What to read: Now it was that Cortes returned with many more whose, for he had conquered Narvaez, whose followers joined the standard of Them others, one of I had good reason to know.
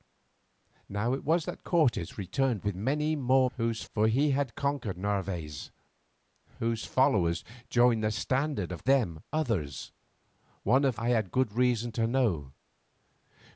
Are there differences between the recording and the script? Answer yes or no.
no